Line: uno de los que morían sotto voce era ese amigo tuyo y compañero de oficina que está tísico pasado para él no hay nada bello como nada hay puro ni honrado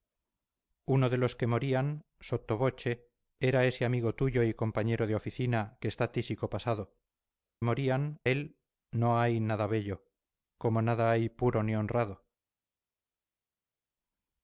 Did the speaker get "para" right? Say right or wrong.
wrong